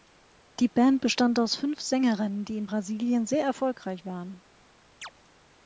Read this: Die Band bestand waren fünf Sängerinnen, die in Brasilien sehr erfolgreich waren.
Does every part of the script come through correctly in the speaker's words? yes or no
no